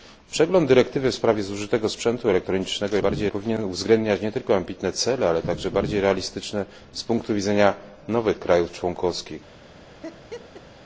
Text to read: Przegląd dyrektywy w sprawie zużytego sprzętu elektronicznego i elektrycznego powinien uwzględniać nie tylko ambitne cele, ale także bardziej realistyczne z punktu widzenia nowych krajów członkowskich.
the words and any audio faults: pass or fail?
fail